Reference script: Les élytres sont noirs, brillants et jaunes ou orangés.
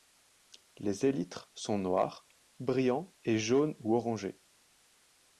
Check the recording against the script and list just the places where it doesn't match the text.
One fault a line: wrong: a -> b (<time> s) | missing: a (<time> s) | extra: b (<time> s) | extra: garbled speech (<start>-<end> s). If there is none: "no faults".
no faults